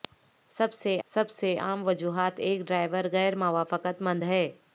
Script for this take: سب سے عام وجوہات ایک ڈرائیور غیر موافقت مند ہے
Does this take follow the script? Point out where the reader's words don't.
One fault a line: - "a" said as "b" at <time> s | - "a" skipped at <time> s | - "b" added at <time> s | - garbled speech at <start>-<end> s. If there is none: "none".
- "سب سے" added at 1.1 s